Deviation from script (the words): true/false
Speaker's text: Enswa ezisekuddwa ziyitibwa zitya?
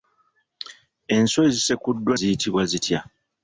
false